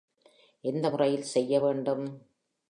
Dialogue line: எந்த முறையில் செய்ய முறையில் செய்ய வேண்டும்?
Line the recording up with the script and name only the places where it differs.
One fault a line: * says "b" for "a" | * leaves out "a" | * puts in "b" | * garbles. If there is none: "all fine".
* leaves out "முறையில் செய்ய"